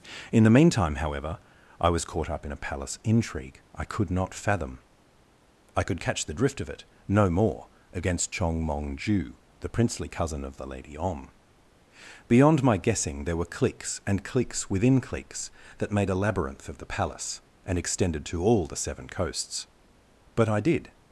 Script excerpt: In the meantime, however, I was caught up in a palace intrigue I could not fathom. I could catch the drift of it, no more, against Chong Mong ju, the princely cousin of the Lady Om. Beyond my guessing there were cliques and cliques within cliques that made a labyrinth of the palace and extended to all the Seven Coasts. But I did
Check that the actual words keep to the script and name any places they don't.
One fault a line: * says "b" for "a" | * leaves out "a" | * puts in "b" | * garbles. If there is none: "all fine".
all fine